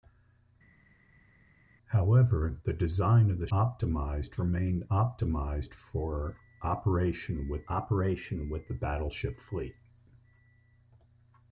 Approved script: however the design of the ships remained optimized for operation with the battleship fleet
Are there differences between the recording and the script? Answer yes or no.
yes